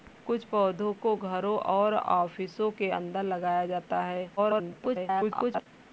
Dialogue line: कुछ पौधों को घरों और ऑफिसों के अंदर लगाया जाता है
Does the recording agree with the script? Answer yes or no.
no